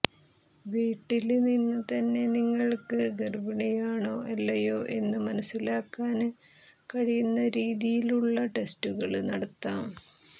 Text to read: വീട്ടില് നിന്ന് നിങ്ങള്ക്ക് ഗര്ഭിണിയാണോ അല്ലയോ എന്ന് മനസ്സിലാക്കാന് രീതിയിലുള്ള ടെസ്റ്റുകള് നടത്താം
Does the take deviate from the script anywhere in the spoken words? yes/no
yes